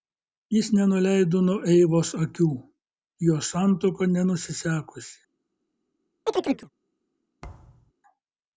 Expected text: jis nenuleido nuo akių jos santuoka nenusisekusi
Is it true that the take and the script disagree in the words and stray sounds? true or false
true